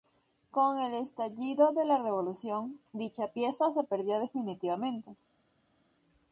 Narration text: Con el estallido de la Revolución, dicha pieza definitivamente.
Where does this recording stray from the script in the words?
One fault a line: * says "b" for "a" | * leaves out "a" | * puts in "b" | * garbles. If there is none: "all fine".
* puts in "se perdió"